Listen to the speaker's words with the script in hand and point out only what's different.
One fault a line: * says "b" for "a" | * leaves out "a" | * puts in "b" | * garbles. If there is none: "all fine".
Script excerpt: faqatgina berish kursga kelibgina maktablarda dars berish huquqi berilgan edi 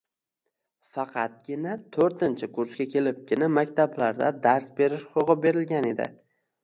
* says "to'rtinchi" for "berish"